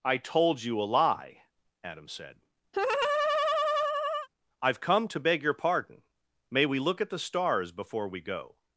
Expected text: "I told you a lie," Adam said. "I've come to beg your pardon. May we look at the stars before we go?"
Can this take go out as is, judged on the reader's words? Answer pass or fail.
pass